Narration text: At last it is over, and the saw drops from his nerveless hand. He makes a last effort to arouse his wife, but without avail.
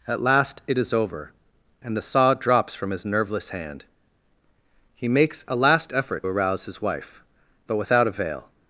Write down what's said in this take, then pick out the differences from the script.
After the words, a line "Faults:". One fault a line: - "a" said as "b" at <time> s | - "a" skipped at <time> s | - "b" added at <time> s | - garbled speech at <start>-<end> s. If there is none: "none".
At last it is over, and the saw drops from his nerveless hand. He makes a last effort arouse his wife, but without avail.
Faults:
- "to" skipped at 6.2 s